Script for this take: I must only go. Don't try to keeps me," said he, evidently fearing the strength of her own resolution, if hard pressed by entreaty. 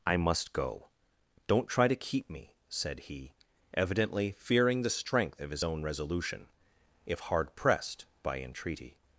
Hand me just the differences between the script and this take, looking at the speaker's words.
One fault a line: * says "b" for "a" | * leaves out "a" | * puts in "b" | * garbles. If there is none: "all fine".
* leaves out "only"
* says "keep" for "keeps"
* says "his" for "her"